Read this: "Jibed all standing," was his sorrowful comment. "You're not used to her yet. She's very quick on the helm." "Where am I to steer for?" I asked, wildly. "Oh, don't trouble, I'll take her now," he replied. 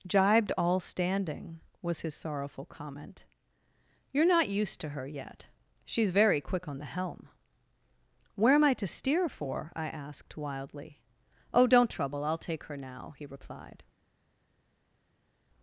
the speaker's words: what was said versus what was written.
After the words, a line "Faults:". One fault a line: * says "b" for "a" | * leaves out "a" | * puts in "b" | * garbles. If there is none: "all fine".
"Jibed all standing," was his sorrowful comment. "You're not used to her yet. She's very quick on the helm." "Where am I to steer for?" I asked, wildly. "Oh, don't trouble, I'll take her now," he replied.
Faults:
all fine